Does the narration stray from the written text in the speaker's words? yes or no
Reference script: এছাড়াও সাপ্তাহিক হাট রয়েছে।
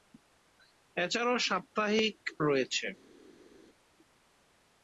yes